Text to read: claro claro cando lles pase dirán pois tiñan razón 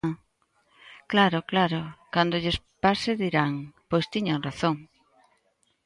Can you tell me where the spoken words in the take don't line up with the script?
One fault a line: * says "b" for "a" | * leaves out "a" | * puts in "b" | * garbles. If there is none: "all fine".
all fine